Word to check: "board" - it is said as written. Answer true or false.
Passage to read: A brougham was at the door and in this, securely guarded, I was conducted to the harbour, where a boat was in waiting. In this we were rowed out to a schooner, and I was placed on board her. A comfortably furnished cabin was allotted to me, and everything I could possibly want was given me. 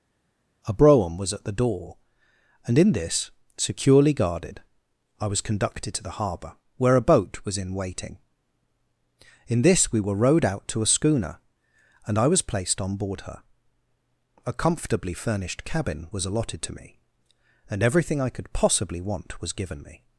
true